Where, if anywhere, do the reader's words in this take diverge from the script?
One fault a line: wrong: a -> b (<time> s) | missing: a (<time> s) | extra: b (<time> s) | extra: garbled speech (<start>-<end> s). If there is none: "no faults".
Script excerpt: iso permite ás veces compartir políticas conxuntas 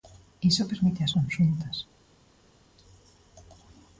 missing: veces compartir políticas (1.1 s)